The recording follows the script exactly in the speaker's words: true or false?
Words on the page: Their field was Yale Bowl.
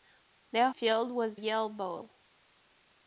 true